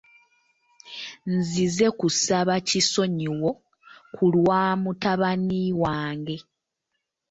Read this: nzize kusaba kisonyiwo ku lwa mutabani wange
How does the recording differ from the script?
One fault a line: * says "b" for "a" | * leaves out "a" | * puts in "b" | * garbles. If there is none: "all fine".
all fine